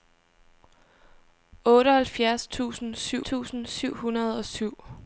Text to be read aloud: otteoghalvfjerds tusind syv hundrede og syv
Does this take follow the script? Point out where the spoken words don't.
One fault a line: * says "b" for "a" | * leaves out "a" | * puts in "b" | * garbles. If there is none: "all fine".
* puts in "tusind syv"